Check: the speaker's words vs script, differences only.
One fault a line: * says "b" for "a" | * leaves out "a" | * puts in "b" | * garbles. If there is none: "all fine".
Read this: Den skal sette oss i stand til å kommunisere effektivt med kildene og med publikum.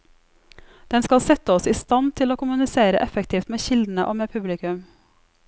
all fine